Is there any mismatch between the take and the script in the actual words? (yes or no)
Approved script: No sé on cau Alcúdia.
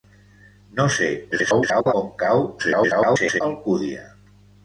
yes